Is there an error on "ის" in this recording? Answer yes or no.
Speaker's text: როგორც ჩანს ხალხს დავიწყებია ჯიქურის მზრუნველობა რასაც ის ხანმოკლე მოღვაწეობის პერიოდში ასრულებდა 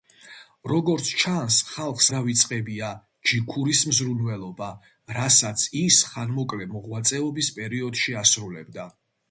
no